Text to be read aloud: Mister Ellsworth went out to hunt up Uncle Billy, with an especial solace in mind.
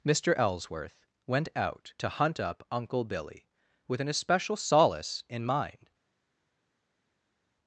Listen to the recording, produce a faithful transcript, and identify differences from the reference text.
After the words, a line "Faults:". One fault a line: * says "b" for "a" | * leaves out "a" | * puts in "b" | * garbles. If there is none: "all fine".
Mister Ellsworth went out to hunt up Uncle Billy, with an especial solace in mind.
Faults:
all fine